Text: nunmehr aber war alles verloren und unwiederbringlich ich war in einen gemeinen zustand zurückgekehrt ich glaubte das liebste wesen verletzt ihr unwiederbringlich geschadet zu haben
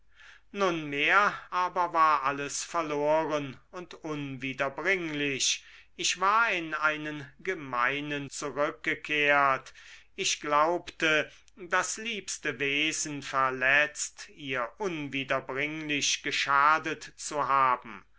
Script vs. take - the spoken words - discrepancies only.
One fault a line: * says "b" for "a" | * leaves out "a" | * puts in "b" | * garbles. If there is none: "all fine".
* leaves out "zustand"